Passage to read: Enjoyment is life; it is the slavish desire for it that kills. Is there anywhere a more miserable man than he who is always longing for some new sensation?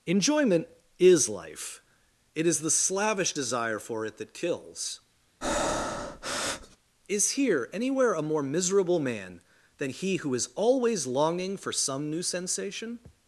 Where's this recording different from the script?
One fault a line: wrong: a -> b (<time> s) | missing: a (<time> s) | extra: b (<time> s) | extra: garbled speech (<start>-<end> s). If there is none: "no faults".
wrong: there -> here (7.3 s)